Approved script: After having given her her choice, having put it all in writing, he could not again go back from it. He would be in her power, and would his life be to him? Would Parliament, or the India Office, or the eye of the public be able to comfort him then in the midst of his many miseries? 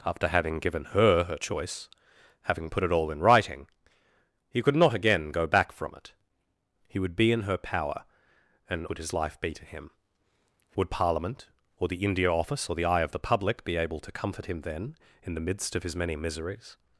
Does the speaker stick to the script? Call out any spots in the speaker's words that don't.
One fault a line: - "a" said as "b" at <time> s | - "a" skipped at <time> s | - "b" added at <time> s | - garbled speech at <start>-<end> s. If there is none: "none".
none